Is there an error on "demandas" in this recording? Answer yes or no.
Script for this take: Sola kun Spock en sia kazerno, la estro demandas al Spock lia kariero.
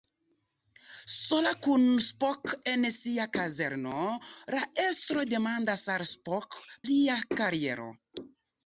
no